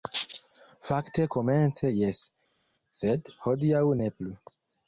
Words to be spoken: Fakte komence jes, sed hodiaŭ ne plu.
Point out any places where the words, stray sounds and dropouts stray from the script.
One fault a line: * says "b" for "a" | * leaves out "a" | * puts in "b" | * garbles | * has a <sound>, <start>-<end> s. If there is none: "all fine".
all fine